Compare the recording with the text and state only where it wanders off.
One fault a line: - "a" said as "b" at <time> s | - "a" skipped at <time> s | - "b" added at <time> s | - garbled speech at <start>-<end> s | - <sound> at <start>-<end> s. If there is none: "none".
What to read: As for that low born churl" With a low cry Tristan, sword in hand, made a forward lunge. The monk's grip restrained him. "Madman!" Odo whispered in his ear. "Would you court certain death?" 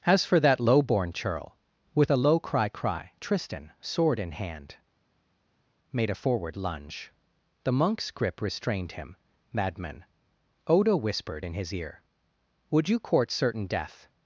- "cry" added at 2.7 s